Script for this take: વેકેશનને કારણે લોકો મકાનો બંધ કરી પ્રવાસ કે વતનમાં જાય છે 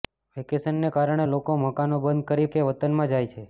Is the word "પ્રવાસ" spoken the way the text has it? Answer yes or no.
no